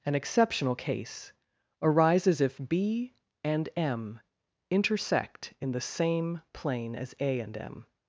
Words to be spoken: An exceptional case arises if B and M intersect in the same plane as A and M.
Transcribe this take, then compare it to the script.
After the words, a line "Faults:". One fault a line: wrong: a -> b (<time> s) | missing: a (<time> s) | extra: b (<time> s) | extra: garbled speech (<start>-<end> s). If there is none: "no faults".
An exceptional case arises if B and M intersect in the same plane as A and M.
Faults:
no faults